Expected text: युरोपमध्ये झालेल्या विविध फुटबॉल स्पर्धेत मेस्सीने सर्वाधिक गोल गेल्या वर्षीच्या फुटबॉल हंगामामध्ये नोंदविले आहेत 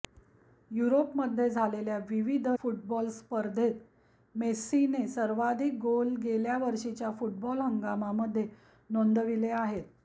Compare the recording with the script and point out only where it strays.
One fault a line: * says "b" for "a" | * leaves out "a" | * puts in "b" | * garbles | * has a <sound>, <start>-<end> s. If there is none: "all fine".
all fine